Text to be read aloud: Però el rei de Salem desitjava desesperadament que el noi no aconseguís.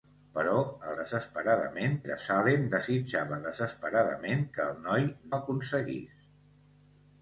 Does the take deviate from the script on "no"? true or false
true